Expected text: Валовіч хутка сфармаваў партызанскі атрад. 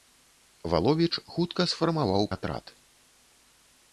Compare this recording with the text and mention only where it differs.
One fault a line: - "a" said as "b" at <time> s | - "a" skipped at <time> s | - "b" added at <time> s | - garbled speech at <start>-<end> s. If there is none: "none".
- "партызанскі" skipped at 2.2 s